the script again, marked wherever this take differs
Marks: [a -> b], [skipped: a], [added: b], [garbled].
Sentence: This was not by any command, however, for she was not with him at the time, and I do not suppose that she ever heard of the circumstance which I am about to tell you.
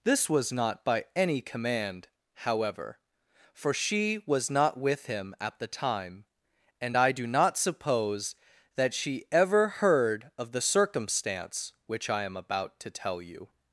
This was not by any command, however, for she was not with him at the time, and I do not suppose that she ever heard of the circumstance which I am about to tell you.